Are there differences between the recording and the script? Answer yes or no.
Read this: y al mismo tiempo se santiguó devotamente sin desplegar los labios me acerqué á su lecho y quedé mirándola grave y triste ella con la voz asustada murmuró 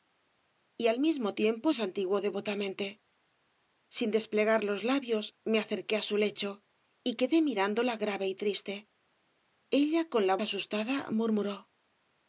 yes